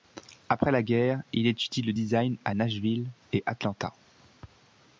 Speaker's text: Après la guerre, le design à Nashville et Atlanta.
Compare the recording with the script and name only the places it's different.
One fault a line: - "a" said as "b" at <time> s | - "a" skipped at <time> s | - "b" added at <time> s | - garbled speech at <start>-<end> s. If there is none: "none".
- "il étudie" added at 1.3 s